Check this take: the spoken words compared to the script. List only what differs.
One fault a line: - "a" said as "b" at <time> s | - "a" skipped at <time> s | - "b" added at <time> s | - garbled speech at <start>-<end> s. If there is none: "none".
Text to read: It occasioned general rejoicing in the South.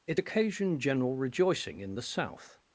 none